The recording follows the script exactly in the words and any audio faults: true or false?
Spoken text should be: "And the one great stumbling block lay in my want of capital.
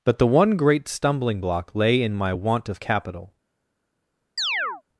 false